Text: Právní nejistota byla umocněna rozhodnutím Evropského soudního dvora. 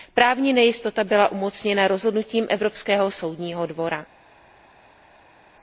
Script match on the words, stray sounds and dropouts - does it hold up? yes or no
yes